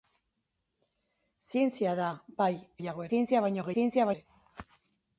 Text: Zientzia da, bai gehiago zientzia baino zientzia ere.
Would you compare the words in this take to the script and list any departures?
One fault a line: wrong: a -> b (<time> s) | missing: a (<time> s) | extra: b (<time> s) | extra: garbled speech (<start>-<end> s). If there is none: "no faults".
no faults